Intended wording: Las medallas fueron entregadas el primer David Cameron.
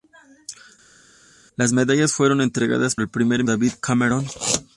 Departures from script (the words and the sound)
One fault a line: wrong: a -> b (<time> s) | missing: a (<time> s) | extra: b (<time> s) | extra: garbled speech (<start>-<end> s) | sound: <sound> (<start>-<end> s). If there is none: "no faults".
no faults